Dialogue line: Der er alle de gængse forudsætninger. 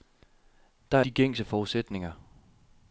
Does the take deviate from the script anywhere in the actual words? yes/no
yes